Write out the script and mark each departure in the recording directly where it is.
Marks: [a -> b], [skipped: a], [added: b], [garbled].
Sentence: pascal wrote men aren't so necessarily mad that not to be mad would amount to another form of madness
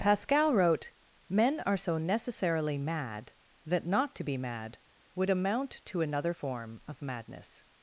pascal wrote men [aren't -> are] so necessarily mad that not to be mad would amount to another form of madness